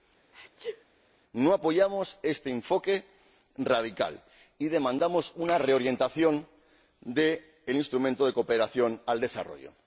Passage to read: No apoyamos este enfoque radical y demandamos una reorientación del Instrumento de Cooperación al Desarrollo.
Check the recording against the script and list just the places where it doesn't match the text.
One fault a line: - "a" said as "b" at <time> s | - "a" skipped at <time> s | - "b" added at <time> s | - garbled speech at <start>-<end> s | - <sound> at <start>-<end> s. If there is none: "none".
- sneeze at 0.3-0.9 s